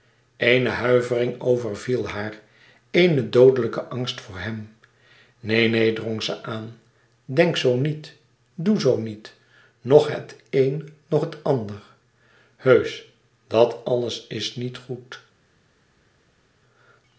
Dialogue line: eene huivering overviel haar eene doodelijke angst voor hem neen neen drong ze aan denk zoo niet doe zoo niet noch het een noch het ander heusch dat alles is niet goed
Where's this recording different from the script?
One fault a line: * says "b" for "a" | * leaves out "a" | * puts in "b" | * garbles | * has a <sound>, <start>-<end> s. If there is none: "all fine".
all fine